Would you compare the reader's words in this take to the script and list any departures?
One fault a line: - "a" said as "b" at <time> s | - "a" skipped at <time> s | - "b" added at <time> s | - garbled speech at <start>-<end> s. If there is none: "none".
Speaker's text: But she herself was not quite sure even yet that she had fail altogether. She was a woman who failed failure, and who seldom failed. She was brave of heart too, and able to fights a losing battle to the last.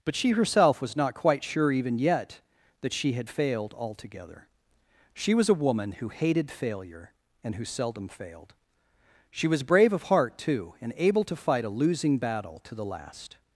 - "fail" said as "failed" at 3.3 s
- "failed" said as "hated" at 6.1 s
- "fights" said as "fight" at 11.3 s